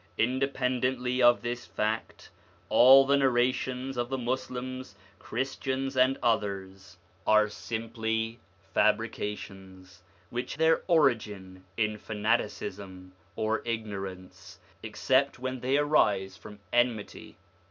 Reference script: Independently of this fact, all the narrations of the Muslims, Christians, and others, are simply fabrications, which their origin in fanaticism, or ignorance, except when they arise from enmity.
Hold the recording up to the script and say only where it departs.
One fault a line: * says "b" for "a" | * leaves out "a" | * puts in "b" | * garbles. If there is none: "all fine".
all fine